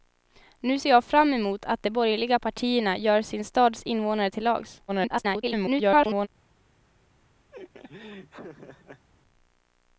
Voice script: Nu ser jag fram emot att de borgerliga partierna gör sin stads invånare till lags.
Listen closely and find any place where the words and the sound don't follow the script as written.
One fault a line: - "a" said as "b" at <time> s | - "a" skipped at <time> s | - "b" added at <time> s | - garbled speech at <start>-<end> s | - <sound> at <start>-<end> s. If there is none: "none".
- garbled speech at 4.9-6.3 s
- laugh at 7.5-9.1 s